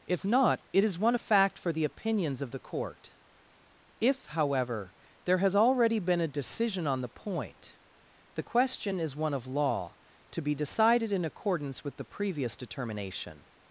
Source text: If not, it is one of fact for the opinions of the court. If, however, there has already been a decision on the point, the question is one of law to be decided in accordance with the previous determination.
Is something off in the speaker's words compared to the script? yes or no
no